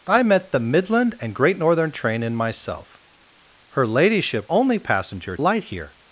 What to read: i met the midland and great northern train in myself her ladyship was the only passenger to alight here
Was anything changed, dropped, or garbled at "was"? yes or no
yes